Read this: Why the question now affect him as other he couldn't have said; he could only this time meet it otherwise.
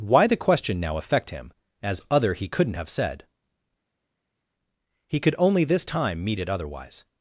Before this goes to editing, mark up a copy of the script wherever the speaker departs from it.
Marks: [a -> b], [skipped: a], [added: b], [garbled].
Why the question now affect him as other he couldn't have said; he could only this time meet it otherwise.